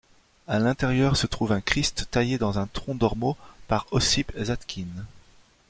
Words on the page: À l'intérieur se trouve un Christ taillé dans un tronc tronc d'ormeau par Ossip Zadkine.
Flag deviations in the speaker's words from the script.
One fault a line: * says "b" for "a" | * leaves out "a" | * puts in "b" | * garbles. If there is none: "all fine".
* leaves out "tronc"